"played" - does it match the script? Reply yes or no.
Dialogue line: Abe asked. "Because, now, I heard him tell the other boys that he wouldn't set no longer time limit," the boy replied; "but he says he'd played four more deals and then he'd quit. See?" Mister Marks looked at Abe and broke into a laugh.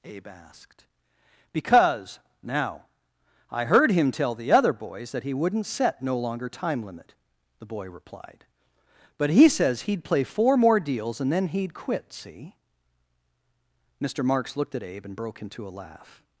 no